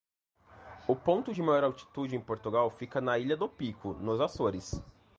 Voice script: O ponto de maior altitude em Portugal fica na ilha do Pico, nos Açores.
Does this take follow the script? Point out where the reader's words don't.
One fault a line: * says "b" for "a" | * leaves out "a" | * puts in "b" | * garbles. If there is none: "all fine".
all fine